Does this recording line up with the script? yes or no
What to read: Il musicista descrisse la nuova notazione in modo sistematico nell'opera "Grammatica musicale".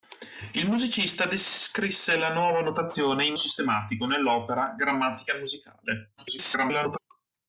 no